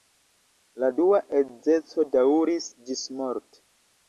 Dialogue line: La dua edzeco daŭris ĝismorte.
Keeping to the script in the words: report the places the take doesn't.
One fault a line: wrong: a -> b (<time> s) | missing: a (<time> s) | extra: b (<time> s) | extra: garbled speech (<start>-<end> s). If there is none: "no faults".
no faults